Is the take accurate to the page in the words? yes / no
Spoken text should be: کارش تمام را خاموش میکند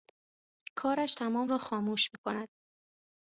yes